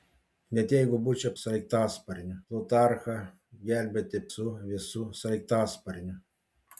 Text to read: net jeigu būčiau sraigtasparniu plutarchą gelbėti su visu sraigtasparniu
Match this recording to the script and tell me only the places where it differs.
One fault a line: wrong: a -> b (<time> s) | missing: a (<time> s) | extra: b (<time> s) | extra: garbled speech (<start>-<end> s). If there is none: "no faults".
no faults